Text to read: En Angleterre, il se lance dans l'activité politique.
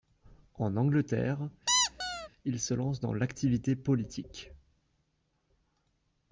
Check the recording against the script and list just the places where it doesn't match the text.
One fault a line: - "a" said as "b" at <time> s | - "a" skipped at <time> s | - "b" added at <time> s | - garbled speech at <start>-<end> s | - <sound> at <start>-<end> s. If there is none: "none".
- squeak at 1.7-2.3 s